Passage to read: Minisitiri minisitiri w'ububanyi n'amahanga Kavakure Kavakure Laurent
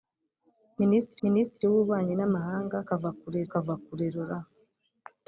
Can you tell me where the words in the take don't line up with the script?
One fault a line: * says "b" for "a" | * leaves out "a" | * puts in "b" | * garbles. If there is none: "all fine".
all fine